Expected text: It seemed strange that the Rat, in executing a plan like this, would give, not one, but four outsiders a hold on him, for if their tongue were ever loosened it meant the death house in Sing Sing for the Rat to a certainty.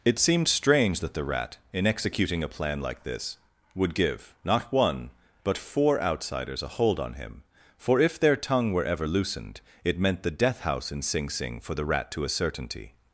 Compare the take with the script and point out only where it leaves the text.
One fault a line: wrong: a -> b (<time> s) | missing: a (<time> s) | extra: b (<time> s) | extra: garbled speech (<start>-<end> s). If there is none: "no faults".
no faults